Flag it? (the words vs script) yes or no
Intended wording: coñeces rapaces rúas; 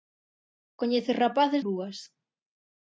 no